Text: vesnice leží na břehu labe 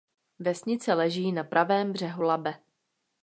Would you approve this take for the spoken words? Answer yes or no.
no